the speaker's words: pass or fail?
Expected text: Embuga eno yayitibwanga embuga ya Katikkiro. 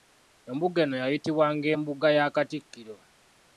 pass